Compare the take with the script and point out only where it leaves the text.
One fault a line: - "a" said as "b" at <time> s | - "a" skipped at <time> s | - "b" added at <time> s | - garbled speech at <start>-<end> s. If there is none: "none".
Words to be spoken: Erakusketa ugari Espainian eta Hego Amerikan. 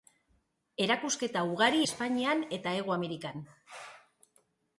none